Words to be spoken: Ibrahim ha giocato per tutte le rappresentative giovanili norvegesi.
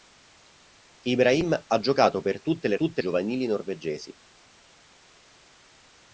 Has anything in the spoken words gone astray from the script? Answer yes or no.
yes